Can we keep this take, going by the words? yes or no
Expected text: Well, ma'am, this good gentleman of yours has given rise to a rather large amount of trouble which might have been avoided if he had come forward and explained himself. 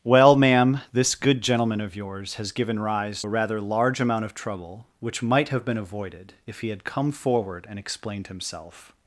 no